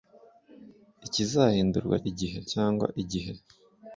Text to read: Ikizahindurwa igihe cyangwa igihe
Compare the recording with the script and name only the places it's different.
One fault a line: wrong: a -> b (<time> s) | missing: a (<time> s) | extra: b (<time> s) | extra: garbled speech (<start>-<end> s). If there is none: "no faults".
no faults